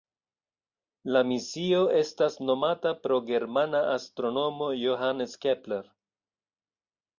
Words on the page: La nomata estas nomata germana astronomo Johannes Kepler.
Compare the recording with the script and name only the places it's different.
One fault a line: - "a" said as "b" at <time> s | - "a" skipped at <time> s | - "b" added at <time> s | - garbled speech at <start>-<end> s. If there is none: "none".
- "nomata" said as "misio" at 1.3 s
- "pro" added at 3.0 s